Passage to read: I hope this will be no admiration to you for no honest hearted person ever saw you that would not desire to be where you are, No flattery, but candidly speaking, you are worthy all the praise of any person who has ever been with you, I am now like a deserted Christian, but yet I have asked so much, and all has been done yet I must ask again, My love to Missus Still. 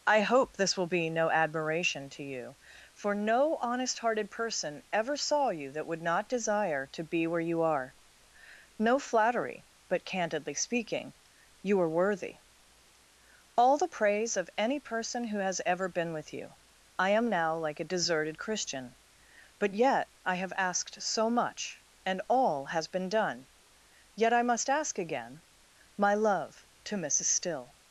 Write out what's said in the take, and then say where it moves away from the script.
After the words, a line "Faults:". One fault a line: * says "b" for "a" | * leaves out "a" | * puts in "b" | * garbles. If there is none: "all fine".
I hope this will be no admiration to you for no honest hearted person ever saw you that would not desire to be where you are, No flattery, but candidly speaking, you are worthy all the praise of any person who has ever been with you, I am now like a deserted Christian, but yet I have asked so much, and all has been done yet I must ask again, My love to Missus Still.
Faults:
all fine